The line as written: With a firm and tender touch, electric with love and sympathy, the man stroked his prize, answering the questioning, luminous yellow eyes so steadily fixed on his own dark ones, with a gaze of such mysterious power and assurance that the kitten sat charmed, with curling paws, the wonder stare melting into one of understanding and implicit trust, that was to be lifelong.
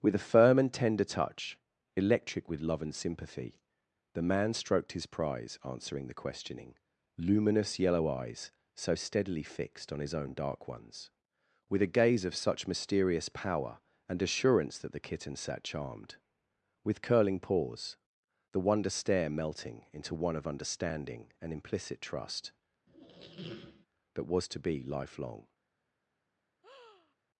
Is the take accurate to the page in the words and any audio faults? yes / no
no